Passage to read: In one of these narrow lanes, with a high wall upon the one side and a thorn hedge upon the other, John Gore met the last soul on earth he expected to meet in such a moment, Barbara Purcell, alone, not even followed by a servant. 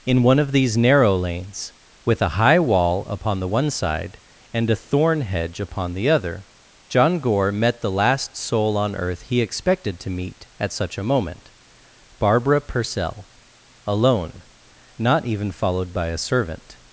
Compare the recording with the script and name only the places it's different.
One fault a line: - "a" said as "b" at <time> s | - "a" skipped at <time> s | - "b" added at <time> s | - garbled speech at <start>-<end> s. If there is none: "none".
- "in" said as "at" at 10.6 s